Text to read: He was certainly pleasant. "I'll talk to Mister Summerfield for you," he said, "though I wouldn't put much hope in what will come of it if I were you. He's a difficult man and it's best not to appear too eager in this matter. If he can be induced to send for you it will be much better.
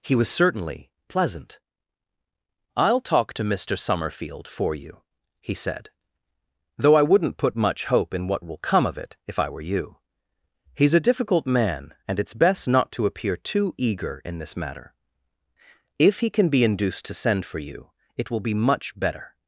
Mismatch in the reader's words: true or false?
false